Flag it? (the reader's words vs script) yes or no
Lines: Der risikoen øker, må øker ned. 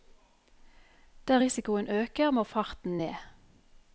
yes